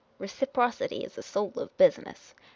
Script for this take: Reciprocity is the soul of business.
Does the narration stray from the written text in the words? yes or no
no